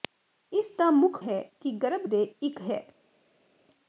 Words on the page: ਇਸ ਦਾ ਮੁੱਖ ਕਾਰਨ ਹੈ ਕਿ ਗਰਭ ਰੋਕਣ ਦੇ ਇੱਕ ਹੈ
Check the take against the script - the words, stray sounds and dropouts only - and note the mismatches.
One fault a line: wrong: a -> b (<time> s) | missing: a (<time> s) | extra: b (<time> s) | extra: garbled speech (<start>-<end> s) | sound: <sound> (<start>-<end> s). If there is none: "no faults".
missing: ਕਾਰਨ (1.2 s)
missing: ਰੋਕਣ (2.0 s)